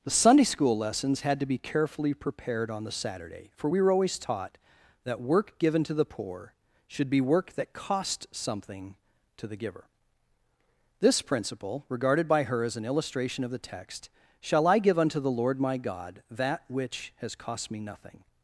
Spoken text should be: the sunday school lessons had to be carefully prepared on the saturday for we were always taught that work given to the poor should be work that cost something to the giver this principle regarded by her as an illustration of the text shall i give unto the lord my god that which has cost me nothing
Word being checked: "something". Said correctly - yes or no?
yes